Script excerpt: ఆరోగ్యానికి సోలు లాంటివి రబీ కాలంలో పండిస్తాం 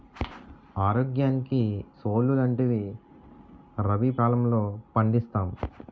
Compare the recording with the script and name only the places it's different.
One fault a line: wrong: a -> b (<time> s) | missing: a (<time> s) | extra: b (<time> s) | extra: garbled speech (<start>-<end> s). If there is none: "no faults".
no faults